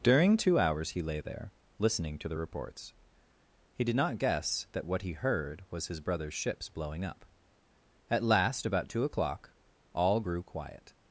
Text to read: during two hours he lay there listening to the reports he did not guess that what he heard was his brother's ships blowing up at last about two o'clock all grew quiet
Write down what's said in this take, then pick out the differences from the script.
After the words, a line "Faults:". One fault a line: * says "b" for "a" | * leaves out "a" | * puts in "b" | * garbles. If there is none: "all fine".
during two hours he lay there listening to the reports he did not guess that what he heard was his brother's ships blowing up at last about two o'clock all grew quiet
Faults:
all fine